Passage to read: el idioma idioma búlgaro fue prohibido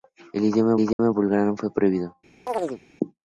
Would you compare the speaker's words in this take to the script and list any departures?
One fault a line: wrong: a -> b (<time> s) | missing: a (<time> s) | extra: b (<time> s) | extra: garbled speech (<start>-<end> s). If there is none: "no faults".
no faults